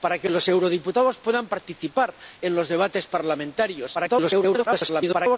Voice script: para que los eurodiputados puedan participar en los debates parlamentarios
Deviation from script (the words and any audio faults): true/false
true